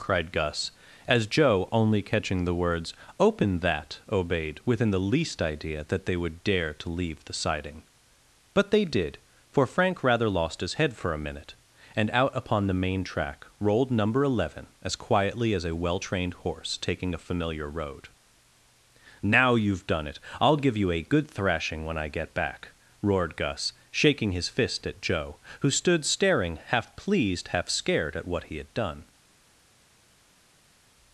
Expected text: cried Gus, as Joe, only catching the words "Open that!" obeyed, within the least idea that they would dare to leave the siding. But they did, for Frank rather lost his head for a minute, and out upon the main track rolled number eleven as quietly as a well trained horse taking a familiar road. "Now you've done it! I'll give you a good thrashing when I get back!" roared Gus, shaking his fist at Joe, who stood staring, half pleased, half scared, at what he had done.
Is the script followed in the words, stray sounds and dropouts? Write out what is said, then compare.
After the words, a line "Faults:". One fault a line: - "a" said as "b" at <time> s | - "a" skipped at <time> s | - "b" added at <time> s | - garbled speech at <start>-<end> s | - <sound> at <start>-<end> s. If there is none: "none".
cried Gus, as Joe, only catching the words "Open that!" obeyed, within the least idea that they would dare to leave the siding. But they did, for Frank rather lost his head for a minute, and out upon the main track rolled number eleven as quietly as a well trained horse taking a familiar road. "Now you've done it! I'll give you a good thrashing when I get back!" roared Gus, shaking his fist at Joe, who stood staring, half pleased, half scared, at what he had done.
Faults:
none